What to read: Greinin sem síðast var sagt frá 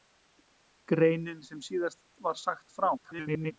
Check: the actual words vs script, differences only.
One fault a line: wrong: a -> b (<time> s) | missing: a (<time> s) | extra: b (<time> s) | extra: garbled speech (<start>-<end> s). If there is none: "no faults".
extra: garbled speech (3.0-3.5 s)